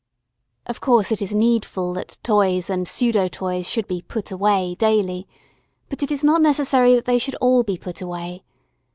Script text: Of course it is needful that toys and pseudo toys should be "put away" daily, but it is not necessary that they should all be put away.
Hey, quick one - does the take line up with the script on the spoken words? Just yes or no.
yes